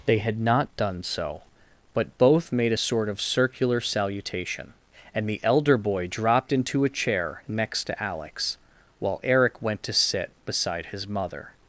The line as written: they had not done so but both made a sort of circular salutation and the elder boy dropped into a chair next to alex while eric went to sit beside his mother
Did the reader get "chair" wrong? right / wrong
right